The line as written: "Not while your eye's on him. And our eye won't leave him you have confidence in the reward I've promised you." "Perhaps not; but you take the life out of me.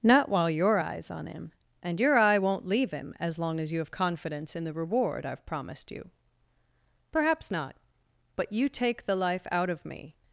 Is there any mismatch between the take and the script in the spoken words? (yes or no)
yes